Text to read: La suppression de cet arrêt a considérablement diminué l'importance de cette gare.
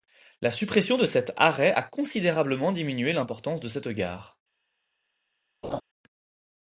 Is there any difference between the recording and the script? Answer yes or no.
no